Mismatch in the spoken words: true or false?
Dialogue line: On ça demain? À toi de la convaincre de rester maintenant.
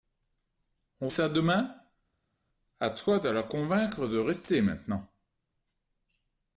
false